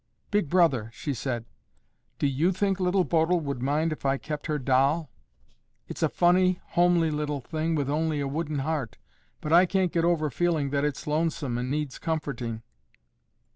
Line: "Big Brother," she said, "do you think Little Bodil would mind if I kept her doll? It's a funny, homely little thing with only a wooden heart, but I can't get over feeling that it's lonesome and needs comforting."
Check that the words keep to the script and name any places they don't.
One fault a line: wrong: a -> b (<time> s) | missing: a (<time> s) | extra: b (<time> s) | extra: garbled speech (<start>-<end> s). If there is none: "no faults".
no faults